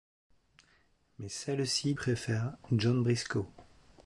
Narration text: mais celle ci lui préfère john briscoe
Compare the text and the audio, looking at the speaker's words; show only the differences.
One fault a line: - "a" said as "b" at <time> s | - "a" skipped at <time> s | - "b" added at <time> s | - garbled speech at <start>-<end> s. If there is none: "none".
- "lui" skipped at 1.9 s